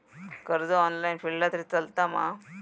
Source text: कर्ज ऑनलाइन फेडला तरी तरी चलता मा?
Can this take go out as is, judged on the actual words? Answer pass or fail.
fail